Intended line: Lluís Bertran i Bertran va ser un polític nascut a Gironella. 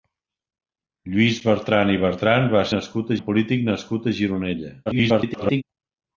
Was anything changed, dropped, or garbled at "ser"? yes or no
yes